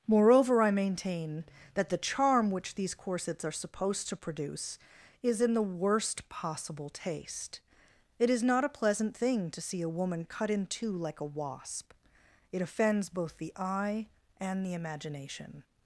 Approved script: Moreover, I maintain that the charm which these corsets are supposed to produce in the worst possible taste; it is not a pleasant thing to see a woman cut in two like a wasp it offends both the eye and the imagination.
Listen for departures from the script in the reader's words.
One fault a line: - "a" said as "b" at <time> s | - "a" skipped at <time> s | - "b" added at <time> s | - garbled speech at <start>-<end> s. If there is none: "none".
- "is" added at 5.2 s